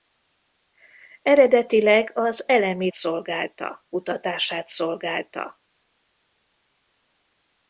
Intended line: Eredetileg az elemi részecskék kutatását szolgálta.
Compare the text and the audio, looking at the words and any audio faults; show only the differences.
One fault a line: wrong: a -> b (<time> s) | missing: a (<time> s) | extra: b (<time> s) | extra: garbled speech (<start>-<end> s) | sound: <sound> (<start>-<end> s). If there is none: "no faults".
wrong: részecskék -> szolgálta (2.9 s)